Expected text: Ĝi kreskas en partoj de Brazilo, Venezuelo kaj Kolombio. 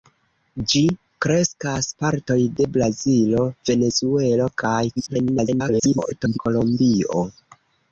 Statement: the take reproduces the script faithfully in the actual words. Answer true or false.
false